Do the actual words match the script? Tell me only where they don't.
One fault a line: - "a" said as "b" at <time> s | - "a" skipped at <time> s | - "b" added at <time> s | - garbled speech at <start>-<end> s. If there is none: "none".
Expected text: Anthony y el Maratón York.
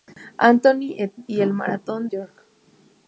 none